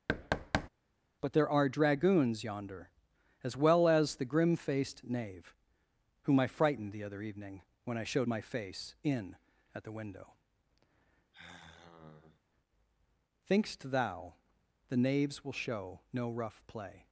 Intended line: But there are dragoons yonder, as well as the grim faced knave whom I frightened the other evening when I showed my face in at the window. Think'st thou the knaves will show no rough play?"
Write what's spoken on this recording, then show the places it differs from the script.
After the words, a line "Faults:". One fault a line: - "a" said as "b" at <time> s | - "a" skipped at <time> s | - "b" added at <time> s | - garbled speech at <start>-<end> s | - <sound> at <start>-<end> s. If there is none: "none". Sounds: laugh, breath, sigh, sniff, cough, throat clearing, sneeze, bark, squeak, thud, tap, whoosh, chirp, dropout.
But there are dragoons yonder, as well as the grim faced knave whom I frightened the other evening when I showed my face in at the window. Think'st thou the knaves will show no rough play?"
Faults:
- thud at 0.1-0.7 s
- sigh at 11.3-12.4 s